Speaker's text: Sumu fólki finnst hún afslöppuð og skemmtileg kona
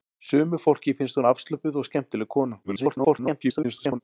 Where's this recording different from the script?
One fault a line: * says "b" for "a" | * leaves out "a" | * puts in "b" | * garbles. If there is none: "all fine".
* garbles